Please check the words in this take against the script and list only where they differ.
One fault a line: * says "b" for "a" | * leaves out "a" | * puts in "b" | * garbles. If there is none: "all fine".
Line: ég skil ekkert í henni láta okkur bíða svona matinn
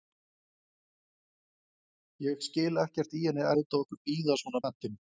all fine